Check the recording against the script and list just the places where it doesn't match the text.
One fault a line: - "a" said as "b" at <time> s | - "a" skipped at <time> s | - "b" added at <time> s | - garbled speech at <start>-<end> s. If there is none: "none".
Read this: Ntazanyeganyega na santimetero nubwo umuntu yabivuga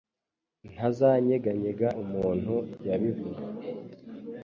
- "na santimetero nubwo" skipped at 1.9 s